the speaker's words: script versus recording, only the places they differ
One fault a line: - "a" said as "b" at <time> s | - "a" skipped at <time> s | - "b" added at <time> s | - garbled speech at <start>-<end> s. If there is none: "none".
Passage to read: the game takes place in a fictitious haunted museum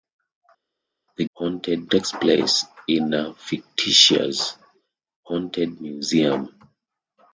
- "game" said as "haunted" at 1.3 s